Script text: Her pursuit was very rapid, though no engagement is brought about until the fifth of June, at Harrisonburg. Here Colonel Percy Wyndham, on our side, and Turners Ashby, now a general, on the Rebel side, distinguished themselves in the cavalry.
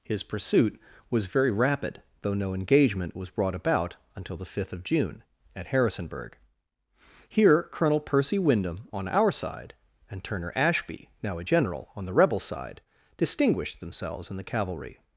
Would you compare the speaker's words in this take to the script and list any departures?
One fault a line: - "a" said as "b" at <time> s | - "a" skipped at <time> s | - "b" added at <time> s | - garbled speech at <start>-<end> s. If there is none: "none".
- "Her" said as "His" at 0.0 s
- "is" said as "was" at 3.1 s
- "Turners" said as "Turner" at 10.2 s